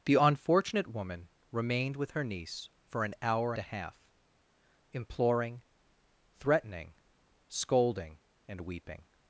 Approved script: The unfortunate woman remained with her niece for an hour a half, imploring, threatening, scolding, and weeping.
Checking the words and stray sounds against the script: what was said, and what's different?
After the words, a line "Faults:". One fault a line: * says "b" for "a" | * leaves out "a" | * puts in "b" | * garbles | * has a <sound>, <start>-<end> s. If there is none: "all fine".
The unfortunate woman remained with her niece for an hour a half, imploring, threatening, scolding, and weeping.
Faults:
all fine